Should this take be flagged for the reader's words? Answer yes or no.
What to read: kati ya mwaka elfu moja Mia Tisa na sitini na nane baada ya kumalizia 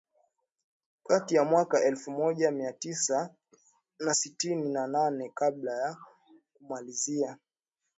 yes